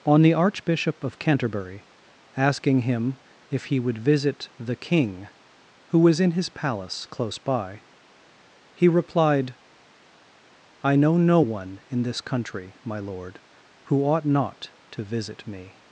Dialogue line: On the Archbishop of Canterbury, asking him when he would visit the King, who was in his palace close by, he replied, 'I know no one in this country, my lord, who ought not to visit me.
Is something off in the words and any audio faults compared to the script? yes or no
yes